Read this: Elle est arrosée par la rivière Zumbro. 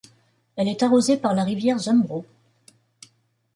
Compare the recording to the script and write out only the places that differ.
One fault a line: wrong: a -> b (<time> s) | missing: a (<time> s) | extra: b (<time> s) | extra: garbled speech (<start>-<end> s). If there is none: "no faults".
no faults